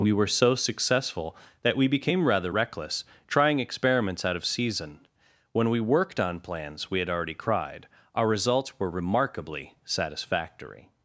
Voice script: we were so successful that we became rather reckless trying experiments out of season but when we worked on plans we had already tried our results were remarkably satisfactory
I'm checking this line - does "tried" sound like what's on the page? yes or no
no